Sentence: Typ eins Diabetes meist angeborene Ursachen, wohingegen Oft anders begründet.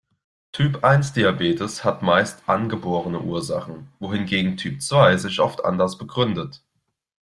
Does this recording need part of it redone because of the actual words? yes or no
yes